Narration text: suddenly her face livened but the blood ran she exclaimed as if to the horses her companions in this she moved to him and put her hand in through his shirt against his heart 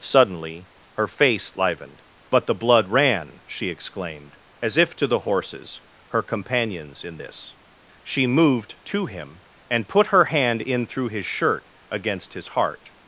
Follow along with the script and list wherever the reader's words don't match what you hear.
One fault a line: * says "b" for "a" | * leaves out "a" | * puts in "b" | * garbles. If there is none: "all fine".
all fine